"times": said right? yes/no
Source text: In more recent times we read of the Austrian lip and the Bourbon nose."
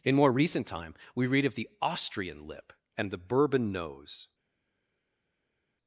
no